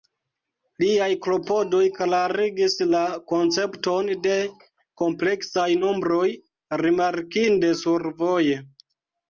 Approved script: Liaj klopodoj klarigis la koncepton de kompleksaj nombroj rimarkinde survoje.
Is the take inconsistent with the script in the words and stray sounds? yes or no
no